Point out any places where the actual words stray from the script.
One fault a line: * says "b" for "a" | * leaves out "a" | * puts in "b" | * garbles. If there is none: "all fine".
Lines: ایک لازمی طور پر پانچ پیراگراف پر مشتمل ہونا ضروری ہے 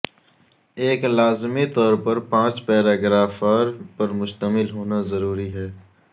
all fine